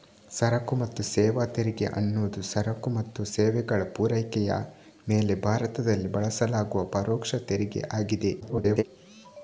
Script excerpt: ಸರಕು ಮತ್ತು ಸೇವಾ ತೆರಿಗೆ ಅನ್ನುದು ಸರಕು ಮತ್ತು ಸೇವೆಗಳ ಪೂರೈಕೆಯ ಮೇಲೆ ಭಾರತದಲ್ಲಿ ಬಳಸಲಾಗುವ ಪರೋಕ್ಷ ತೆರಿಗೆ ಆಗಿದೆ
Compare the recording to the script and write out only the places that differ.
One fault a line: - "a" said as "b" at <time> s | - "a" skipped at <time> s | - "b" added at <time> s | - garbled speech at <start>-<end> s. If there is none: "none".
- garbled speech at 8.4-8.8 s